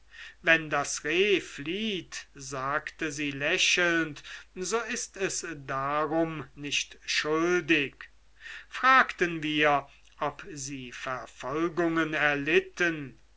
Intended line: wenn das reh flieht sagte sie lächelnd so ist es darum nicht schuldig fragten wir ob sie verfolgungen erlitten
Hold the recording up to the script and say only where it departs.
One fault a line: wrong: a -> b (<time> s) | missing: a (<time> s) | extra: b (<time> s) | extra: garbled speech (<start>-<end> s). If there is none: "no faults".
no faults